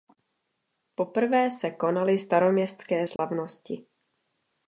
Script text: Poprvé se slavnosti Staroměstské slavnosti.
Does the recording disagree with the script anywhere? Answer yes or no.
yes